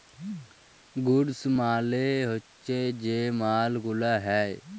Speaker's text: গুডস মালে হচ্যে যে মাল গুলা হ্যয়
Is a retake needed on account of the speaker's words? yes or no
no